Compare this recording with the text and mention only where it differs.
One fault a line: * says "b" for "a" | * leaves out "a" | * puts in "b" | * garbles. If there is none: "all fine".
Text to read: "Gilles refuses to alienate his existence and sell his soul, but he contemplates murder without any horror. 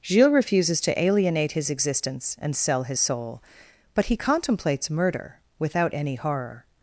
all fine